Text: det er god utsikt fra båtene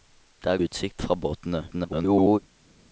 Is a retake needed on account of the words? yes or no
yes